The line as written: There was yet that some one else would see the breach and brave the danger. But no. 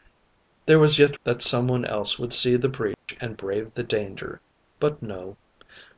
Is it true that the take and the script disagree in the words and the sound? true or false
true